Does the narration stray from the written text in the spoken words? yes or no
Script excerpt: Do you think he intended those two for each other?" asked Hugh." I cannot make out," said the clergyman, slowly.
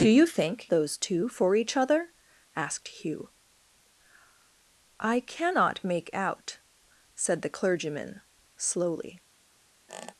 yes